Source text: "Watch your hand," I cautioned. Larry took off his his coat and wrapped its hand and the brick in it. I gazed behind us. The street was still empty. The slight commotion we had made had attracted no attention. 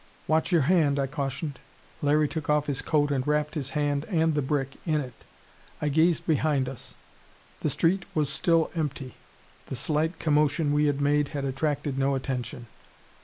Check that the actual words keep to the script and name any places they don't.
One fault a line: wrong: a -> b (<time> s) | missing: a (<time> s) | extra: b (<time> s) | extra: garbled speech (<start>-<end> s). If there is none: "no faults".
missing: his (2.8 s)
wrong: its -> his (3.5 s)